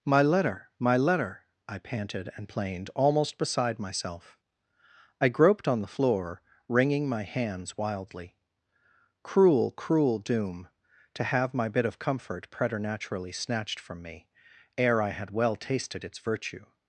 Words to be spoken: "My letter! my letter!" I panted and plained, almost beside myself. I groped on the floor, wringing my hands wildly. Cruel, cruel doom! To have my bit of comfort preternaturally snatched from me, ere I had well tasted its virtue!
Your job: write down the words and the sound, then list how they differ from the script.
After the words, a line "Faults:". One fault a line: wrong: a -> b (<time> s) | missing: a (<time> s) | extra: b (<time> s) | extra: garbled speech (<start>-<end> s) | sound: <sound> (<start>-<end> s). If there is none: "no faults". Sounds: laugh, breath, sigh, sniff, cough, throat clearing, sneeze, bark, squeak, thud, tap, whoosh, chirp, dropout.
"My letter! my letter!" I panted and plained, almost beside myself. I groped on the floor, wringing my hands wildly. Cruel, cruel doom! To have my bit of comfort preternaturally snatched from me, ere I had well tasted its virtue!
Faults:
no faults